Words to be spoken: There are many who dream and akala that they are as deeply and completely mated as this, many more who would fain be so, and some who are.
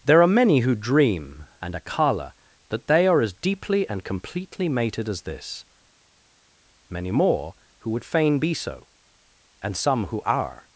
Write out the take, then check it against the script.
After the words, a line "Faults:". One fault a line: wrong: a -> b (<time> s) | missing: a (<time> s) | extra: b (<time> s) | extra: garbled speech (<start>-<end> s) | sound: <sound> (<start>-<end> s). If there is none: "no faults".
There are many who dream and akala that they are as deeply and completely mated as this, many more who would fain be so, and some who are.
Faults:
no faults